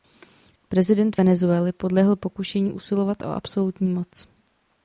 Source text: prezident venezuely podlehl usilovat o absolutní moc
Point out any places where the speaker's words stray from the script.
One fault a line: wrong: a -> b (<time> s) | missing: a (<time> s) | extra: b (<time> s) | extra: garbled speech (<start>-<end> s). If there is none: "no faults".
extra: pokušení (2.2 s)